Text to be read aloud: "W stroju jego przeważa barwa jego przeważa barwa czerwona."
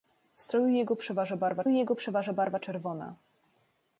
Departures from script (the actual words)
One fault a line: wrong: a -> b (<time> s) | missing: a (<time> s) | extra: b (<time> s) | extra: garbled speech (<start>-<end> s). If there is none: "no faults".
no faults